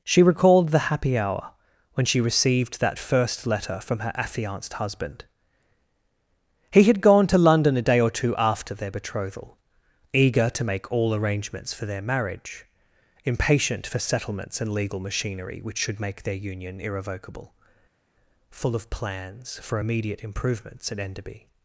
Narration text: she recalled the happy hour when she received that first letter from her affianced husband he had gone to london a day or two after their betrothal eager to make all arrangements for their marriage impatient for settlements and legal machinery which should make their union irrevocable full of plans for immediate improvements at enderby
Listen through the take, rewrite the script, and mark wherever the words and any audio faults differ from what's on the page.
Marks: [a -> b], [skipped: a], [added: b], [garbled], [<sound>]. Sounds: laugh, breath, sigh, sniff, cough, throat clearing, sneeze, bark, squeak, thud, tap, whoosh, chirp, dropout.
she recalled the happy hour when she received that first letter from her affianced husband he had gone to london a day or two after their betrothal eager to make all arrangements for their marriage impatient for settlements and legal machinery which should make their union irrevocable full of plans for immediate improvements at enderby